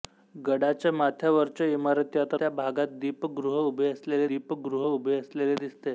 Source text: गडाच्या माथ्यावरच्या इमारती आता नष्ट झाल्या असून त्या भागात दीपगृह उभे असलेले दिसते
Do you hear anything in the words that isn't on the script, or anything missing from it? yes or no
yes